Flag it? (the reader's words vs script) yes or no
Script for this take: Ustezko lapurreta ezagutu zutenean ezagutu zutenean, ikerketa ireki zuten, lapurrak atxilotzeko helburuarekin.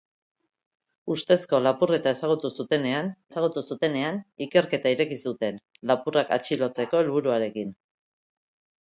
no